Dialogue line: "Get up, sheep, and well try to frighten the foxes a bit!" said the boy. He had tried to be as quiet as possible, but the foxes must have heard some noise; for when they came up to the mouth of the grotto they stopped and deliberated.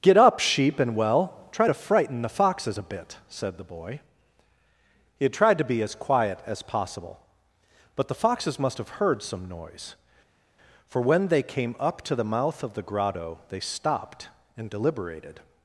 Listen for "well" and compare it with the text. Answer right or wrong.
right